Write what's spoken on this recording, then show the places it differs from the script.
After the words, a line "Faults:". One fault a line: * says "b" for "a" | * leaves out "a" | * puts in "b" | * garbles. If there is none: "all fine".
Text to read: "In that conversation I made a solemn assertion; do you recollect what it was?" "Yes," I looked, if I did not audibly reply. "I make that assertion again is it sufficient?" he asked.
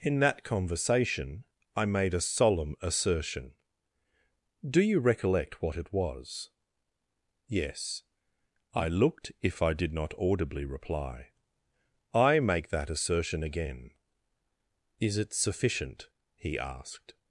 "In that conversation I made a solemn assertion; do you recollect what it was?" "Yes," I looked, if I did not audibly reply. "I make that assertion again is it sufficient?" he asked.
Faults:
all fine